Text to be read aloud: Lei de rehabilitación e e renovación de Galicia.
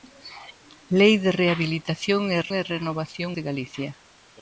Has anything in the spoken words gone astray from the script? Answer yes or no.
no